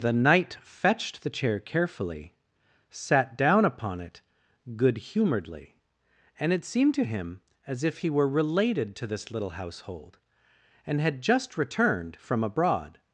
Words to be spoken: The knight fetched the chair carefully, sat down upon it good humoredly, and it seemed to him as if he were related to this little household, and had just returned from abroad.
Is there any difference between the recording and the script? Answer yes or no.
no